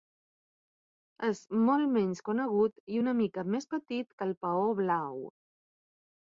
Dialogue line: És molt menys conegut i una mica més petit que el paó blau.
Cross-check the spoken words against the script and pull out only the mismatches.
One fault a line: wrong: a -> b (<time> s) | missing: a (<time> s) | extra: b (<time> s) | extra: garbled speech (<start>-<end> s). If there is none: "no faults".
no faults